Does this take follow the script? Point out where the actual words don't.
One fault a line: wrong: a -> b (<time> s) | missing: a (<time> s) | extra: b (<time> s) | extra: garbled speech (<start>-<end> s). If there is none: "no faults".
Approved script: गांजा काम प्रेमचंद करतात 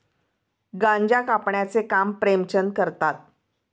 extra: कापण्याचे (1.2 s)